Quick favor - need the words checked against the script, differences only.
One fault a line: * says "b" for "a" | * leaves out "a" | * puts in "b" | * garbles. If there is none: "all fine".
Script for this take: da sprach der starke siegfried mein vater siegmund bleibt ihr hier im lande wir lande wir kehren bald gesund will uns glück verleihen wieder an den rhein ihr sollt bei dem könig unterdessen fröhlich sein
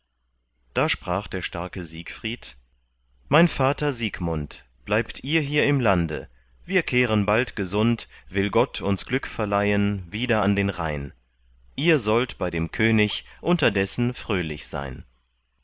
* leaves out "lande wir"
* puts in "gott"